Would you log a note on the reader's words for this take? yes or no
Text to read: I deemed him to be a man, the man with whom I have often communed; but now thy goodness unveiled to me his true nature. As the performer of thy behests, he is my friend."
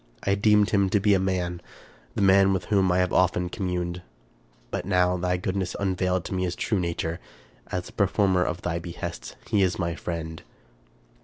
no